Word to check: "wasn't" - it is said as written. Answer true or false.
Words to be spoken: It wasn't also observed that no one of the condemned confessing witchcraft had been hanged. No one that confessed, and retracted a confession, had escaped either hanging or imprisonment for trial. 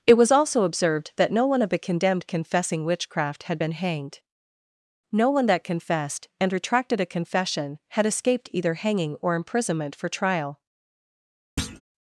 false